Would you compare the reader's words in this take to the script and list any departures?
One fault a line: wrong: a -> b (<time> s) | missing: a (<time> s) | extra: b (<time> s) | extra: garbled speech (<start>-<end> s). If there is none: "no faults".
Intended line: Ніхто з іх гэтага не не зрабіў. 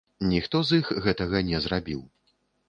missing: не (1.6 s)